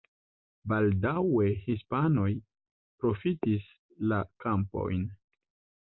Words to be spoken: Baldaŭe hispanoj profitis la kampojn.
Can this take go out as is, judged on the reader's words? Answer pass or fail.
pass